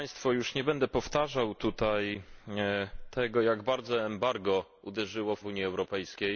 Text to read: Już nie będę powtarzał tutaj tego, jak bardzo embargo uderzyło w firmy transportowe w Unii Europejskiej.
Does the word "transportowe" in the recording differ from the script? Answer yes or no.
yes